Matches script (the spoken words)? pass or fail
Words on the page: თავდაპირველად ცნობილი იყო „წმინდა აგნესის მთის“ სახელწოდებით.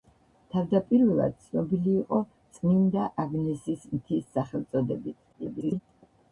fail